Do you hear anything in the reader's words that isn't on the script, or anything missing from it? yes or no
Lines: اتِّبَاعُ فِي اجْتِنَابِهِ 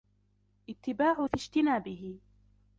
no